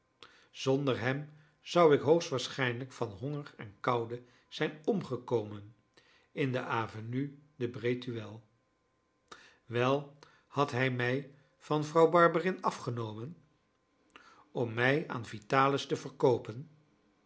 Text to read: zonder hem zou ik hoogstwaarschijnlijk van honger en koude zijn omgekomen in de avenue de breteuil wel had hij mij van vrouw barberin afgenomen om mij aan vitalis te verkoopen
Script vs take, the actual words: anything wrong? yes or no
no